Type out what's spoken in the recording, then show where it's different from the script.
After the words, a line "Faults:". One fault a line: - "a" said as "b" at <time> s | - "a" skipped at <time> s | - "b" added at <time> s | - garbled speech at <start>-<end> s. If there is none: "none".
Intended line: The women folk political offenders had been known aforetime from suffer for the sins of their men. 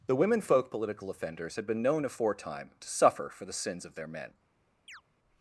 The women folk political offenders had been known aforetime to suffer for the sins of their men.
Faults:
- "from" said as "to" at 2.8 s